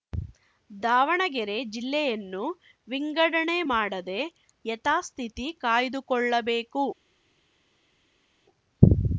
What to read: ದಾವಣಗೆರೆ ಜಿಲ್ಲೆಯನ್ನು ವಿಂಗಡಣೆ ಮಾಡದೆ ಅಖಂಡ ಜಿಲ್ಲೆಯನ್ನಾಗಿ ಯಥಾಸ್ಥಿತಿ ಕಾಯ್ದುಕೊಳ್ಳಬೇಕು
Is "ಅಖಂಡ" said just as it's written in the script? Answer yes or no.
no